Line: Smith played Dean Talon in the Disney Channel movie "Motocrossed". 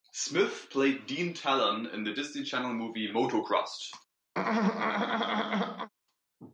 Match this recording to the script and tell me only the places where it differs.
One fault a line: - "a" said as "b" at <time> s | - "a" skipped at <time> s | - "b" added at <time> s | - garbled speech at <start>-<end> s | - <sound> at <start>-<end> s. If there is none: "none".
- throat clearing at 4.3-5.9 s